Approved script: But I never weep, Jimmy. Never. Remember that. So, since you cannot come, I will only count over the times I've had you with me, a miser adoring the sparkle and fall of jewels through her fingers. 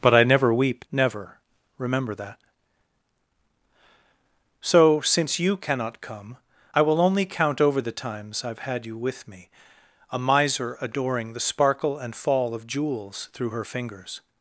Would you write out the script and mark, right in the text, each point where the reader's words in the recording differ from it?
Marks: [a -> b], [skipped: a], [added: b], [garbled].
But I never weep, [skipped: Jimmy.] Never. Remember that. So, since you cannot come, I will only count over the times I've had you with me, a miser adoring the sparkle and fall of jewels through her fingers.